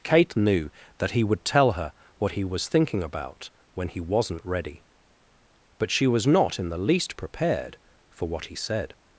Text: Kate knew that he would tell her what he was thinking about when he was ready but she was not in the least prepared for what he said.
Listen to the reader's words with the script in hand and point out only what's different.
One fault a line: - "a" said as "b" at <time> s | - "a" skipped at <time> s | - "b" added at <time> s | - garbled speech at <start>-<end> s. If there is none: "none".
- "was" said as "wasn't" at 4.0 s